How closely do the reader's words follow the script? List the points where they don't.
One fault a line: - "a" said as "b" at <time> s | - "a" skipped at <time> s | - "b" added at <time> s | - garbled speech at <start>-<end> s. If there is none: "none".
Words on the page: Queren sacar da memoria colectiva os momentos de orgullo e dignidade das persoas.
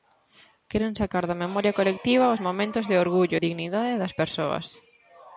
none